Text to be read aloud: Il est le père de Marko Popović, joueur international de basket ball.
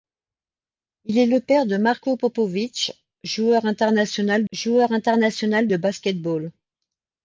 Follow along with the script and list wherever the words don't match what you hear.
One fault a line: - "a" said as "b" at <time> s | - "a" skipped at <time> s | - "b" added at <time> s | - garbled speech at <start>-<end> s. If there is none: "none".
- "joueur international" added at 4.5 s